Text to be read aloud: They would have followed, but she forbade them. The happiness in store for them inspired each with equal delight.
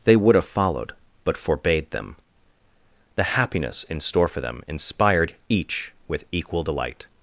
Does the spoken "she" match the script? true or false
false